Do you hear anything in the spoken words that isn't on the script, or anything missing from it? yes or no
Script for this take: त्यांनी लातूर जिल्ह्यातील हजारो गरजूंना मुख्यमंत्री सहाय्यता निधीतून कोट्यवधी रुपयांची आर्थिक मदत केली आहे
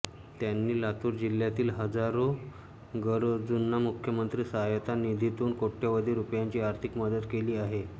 no